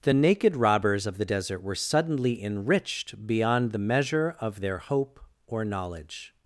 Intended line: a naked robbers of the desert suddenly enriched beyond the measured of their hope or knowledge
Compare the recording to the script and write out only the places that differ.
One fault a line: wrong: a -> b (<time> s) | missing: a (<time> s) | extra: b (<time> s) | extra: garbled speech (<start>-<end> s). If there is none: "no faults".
wrong: a -> the (0.0 s)
extra: were (1.6 s)
wrong: measured -> measure (3.8 s)